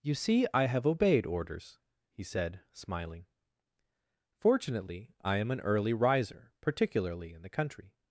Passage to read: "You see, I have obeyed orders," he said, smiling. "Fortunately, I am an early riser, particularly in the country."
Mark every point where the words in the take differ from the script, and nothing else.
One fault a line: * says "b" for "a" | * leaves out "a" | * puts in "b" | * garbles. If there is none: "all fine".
all fine